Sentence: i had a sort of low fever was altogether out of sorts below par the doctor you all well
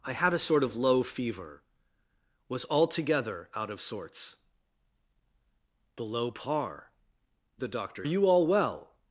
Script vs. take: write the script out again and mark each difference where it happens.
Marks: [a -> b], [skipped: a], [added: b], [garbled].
i had a sort of low fever was altogether out of sorts below par the doctor you all well